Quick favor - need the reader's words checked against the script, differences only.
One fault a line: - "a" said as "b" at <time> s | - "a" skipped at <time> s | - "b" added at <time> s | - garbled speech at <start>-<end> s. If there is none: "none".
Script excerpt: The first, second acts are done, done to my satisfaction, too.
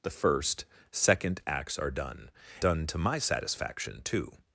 none